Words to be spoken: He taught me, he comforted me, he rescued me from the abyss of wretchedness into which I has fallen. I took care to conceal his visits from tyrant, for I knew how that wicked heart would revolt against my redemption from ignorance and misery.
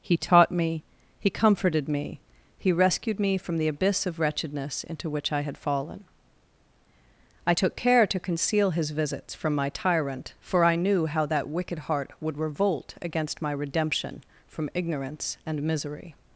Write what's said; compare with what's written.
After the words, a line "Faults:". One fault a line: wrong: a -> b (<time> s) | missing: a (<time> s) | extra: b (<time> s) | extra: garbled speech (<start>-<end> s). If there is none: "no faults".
He taught me, he comforted me, he rescued me from the abyss of wretchedness into which I had fallen. I took care to conceal his visits from my tyrant, for I knew how that wicked heart would revolt against my redemption from ignorance and misery.
Faults:
wrong: has -> had (5.4 s)
extra: my (9.5 s)